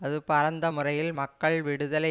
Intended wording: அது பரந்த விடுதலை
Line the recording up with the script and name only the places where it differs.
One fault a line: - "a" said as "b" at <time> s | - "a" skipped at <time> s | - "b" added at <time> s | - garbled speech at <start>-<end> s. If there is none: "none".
- "முறையில் மக்கள்" added at 0.7 s